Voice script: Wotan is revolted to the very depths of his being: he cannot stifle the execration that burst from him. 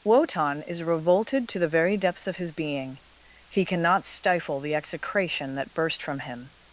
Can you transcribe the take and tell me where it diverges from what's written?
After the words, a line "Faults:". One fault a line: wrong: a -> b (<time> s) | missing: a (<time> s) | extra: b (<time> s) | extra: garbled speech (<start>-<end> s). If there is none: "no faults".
Wotan is revolted to the very depths of his being: he cannot stifle the execration that burst from him.
Faults:
no faults